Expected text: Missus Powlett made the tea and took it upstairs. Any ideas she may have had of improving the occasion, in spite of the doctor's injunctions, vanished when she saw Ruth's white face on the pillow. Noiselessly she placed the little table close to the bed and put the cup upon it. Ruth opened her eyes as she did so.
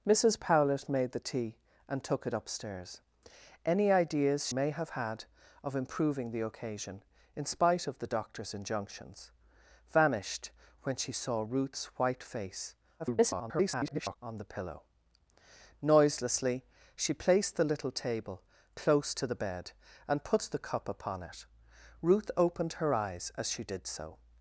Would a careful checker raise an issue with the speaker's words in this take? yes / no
yes